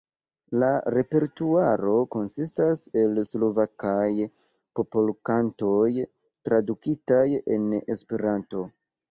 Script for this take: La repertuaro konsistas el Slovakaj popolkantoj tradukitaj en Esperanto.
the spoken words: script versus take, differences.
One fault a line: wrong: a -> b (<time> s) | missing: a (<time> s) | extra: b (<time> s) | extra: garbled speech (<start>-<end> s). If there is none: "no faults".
no faults